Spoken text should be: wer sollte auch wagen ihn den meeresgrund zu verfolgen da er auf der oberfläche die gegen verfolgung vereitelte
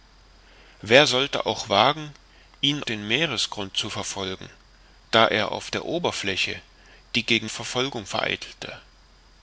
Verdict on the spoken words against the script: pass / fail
pass